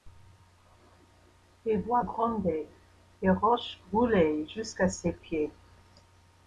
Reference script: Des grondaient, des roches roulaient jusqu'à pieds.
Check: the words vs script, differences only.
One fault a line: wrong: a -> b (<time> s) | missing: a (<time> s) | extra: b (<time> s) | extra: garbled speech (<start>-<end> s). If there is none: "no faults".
extra: voix (1.8 s)
extra: ses (4.9 s)